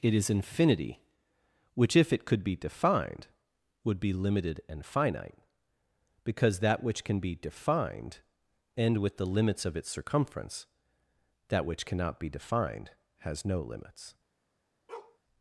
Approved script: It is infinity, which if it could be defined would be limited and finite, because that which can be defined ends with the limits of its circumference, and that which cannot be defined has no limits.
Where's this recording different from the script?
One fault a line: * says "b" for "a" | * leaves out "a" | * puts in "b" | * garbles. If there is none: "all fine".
* says "end" for "ends"
* leaves out "and"